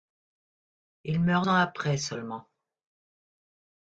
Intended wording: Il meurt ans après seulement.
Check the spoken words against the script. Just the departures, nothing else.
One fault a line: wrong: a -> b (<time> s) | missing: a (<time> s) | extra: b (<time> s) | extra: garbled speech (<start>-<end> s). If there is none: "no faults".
no faults